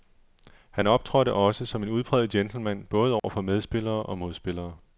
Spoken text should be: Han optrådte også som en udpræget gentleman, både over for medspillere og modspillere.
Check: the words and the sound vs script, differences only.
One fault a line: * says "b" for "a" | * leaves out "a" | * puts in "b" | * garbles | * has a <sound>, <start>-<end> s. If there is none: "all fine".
* has a dropout, 3.2-3.2 s